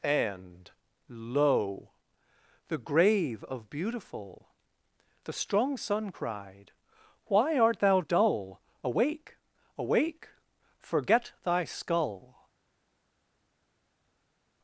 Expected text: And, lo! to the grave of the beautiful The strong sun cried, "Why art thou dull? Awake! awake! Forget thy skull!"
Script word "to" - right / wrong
wrong